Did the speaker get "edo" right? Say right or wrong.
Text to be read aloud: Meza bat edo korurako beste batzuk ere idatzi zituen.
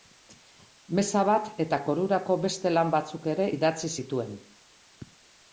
wrong